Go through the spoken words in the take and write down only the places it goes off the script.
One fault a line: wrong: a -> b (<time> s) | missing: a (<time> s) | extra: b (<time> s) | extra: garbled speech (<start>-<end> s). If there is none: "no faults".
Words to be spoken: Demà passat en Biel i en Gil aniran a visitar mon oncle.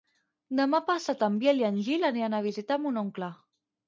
no faults